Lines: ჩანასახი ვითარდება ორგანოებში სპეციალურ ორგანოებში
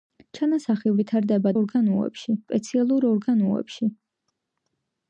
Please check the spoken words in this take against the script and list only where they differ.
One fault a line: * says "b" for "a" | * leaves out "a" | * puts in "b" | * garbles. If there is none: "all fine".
all fine